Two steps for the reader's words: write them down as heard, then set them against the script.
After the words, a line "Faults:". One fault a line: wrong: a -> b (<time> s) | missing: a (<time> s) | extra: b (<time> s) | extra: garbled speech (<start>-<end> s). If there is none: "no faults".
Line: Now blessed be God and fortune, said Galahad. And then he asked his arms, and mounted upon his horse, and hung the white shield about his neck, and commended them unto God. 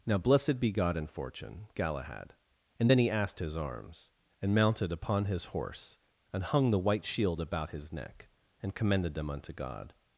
Now blessed be God and fortune, Galahad. And then he asked his arms, and mounted upon his horse, and hung the white shield about his neck, and commended them unto God.
Faults:
missing: said (1.7 s)